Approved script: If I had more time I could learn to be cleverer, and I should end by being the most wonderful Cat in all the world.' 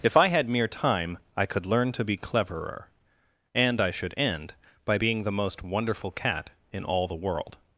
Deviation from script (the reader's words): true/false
true